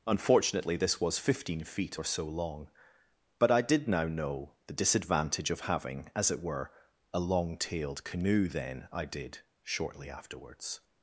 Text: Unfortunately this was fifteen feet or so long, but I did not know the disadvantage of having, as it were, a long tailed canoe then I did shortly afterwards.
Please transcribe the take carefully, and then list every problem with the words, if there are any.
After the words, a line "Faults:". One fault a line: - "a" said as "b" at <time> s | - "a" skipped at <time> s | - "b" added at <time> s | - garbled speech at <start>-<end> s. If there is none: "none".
Unfortunately this was fifteen feet or so long, but I did now know the disadvantage of having, as it were, a long tailed canoe then I did shortly afterwards.
Faults:
- "not" said as "now" at 3.9 s